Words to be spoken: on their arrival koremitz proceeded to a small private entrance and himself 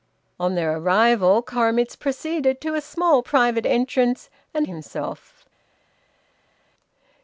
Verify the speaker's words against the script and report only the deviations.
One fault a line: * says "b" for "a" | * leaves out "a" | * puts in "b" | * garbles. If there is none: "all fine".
all fine